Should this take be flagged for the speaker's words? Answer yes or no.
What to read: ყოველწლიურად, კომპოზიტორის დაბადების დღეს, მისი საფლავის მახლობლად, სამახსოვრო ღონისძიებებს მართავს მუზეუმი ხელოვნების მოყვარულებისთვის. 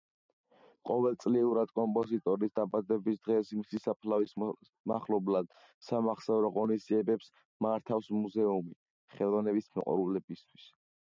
no